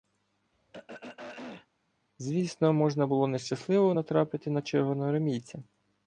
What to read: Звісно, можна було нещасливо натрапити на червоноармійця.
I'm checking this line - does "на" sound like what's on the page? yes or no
yes